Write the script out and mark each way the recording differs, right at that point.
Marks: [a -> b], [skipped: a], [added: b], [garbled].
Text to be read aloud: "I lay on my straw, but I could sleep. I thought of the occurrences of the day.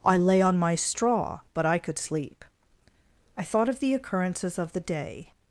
"I lay on my straw, but I could sleep. I thought of the occurrences of the day.